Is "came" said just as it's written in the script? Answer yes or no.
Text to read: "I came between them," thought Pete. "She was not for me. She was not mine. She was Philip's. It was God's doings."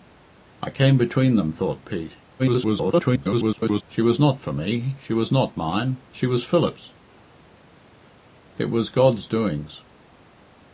yes